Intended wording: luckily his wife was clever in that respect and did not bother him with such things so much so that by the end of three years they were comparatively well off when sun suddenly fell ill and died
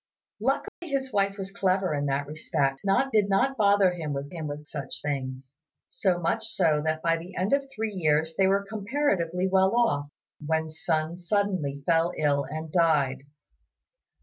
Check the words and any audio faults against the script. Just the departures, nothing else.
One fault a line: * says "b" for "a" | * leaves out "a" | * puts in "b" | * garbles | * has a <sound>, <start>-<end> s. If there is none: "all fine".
* has a dropout, 0.7-0.8 s
* says "not" for "and"
* puts in "him with"